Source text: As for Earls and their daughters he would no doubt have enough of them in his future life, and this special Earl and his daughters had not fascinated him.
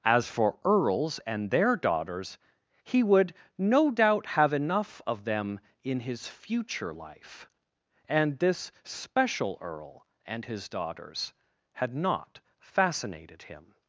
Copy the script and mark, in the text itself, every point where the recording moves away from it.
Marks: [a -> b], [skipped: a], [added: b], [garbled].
As for Earls and their daughters he would no doubt have enough of them in his future life, and this special Earl and his daughters had not fascinated him.